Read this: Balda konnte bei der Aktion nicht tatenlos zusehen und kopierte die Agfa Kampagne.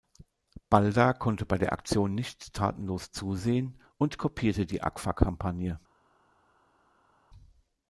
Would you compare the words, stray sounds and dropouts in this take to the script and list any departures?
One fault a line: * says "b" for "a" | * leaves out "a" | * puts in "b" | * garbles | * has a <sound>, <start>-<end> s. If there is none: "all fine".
all fine